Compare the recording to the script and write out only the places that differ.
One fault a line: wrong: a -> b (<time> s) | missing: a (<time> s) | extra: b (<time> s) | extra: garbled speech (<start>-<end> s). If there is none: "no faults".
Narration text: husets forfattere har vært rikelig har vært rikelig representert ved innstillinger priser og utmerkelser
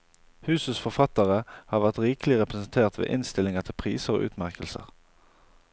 missing: har vært rikelig (2.4 s)
extra: til (3.7 s)